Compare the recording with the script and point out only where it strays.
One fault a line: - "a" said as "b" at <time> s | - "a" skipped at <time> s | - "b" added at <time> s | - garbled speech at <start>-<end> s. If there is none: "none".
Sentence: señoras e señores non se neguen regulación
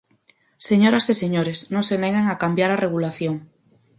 - "a cambiar a" added at 2.3 s